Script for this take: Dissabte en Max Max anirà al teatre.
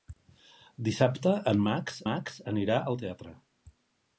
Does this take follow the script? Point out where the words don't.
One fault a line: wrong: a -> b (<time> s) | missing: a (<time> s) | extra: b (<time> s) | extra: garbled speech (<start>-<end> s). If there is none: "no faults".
no faults